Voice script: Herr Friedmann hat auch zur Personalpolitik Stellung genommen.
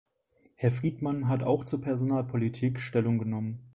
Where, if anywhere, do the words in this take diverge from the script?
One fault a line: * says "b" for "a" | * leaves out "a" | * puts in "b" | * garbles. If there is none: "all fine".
all fine